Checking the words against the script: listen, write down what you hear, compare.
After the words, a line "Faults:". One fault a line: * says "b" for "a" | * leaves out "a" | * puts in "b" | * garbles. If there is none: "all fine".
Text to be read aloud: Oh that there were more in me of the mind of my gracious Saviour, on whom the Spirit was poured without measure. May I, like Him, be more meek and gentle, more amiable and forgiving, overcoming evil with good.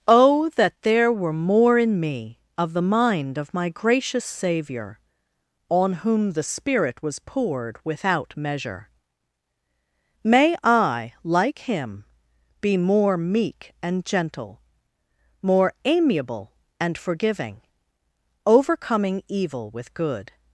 Oh that there were more in me of the mind of my gracious Saviour, on whom the Spirit was poured without measure. May I, like Him, be more meek and gentle, more amiable and forgiving, overcoming evil with good.
Faults:
all fine